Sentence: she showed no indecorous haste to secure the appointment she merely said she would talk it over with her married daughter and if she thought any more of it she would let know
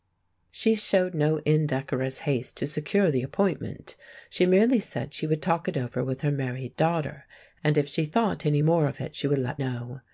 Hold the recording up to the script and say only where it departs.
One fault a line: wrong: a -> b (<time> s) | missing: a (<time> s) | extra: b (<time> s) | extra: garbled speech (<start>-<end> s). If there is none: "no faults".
no faults